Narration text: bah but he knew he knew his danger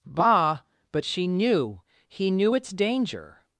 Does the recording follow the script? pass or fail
fail